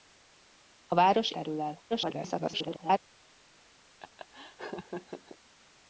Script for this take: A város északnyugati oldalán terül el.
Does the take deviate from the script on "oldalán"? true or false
true